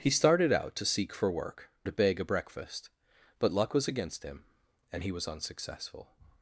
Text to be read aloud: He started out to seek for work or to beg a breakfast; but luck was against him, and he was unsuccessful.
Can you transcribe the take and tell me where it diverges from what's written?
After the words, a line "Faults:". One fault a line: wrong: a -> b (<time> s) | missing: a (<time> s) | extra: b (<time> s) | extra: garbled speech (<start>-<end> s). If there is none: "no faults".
He started out to seek for work to beg a breakfast; but luck was against him, and he was unsuccessful.
Faults:
missing: or (1.7 s)